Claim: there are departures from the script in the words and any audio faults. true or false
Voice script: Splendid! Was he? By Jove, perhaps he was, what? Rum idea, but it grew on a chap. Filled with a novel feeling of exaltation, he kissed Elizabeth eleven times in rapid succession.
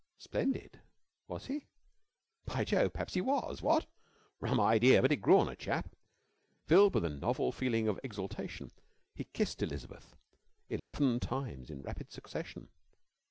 true